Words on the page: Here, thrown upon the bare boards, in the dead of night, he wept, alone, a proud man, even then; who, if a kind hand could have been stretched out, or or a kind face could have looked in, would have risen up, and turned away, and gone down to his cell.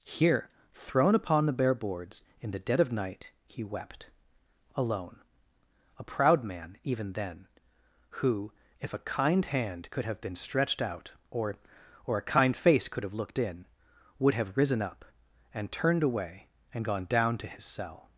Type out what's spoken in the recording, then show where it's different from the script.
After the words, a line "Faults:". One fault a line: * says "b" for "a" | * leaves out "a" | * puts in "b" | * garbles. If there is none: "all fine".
Here, thrown upon the bare boards, in the dead of night, he wept, alone, a proud man, even then; who, if a kind hand could have been stretched out, or or a kind face could have looked in, would have risen up, and turned away, and gone down to his cell.
Faults:
all fine